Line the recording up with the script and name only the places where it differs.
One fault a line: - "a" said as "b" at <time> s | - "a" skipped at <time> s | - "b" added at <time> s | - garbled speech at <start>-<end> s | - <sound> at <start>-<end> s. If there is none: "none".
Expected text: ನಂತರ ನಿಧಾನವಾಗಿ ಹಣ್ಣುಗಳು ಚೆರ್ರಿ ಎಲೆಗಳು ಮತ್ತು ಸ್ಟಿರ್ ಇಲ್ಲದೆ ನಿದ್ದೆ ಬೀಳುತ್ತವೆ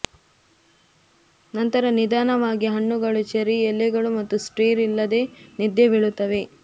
none